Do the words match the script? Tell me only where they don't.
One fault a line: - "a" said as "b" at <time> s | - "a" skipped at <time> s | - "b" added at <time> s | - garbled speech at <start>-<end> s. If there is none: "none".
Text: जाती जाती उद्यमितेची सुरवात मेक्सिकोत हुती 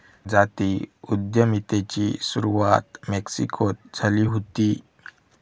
- "जाती" skipped at 0.7 s
- "झाली" added at 3.9 s